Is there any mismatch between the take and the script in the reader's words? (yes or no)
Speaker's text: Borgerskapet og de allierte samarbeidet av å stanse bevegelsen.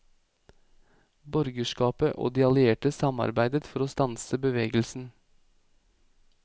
yes